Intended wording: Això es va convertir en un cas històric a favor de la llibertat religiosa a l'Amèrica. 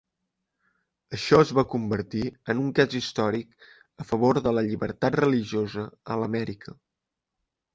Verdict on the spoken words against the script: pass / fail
pass